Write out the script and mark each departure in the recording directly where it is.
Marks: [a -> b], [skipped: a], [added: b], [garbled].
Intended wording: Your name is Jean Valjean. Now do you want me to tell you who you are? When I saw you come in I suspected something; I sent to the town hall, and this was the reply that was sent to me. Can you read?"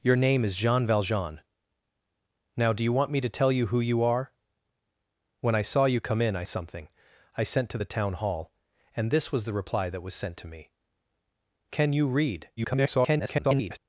Your name is Jean Valjean. Now do you want me to tell you who you are? When I saw you come in I [skipped: suspected] something; I sent to the town hall, and this was the reply that was sent to me. Can you read?" [garbled]